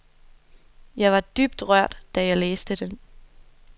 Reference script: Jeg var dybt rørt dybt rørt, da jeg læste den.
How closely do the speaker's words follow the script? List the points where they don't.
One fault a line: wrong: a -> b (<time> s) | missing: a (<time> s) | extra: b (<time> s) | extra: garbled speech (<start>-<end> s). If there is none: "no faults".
missing: dybt rørt (2.0 s)